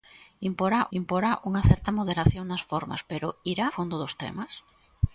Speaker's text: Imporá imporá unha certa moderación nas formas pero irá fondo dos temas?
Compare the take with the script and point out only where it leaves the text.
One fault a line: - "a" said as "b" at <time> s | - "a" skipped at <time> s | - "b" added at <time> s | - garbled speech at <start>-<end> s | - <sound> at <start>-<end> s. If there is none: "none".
none